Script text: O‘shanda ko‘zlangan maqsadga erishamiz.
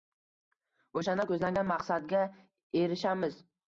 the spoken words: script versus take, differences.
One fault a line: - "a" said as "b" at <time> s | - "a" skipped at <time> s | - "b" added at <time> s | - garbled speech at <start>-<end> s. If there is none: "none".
none